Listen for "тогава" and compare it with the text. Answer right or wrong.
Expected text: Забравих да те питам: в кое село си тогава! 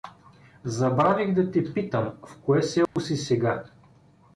wrong